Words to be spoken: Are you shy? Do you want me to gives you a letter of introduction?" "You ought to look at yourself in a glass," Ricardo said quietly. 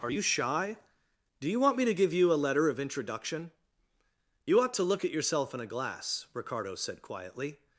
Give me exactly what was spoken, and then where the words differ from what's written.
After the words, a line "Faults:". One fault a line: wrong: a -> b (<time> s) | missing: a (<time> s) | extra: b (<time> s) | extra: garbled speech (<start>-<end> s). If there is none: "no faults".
Are you shy? Do you want me to give you a letter of introduction?" "You ought to look at yourself in a glass," Ricardo said quietly.
Faults:
wrong: gives -> give (1.9 s)